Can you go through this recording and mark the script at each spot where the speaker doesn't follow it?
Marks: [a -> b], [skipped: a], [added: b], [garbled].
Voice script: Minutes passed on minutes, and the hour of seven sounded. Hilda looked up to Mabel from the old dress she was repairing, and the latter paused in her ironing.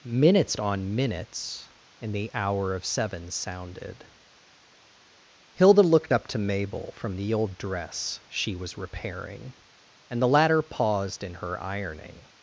Minutes [skipped: passed] on minutes, and the hour of seven sounded. Hilda looked up to Mabel from the old dress she was repairing, and the latter paused in her ironing.